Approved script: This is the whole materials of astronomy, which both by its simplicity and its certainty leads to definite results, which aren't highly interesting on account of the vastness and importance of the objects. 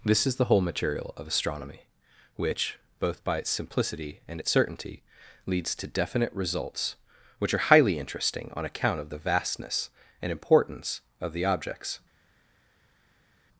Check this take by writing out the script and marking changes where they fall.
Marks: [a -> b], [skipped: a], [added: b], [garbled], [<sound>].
This is the whole [materials -> material] of astronomy, which both by its simplicity and its certainty leads to definite results, which [aren't -> are] highly interesting on account of the vastness and importance of the objects.